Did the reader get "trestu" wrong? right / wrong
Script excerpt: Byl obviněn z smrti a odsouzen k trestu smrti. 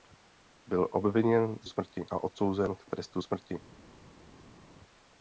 right